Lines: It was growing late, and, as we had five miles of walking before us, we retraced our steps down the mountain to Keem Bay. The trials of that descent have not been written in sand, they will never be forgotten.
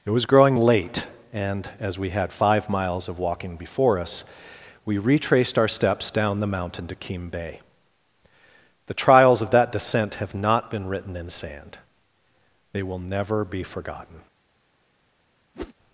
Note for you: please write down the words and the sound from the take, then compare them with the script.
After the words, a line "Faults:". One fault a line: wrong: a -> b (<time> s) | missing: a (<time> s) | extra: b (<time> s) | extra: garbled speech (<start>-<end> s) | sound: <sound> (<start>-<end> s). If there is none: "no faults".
It was growing late, and, as we had five miles of walking before us, we retraced our steps down the mountain to Keem Bay. The trials of that descent have not been written in sand, they will never be forgotten.
Faults:
sound: whoosh (15.5-15.7 s)